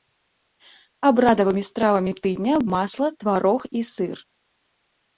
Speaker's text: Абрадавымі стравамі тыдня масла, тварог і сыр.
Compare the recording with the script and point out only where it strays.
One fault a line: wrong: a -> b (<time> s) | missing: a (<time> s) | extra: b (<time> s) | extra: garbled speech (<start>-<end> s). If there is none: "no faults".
no faults